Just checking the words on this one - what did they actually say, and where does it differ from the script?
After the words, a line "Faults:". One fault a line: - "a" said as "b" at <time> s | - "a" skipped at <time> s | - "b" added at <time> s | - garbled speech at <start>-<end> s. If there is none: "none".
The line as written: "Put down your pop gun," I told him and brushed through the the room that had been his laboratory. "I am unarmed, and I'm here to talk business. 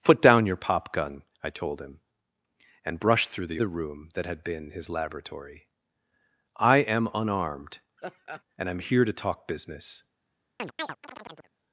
"Put down your pop gun," I told him and brushed through the the room that had been his laboratory. "I am unarmed, and I'm here to talk business.
Faults:
none